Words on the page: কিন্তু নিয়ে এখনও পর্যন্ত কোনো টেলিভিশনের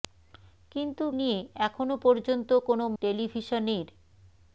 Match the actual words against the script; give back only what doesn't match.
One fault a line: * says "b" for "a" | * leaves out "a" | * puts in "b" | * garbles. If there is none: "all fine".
all fine